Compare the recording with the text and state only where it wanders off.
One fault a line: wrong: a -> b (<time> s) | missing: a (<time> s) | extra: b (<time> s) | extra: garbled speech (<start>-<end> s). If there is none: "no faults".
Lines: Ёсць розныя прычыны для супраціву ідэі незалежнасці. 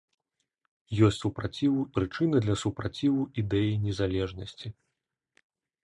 wrong: розныя -> супраціву (1.2 s)